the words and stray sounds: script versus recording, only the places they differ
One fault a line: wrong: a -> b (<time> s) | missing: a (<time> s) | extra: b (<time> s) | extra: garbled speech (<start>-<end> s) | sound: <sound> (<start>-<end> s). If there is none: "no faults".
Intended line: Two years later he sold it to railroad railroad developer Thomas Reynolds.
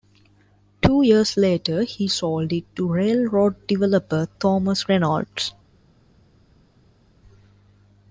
missing: railroad (3.7 s)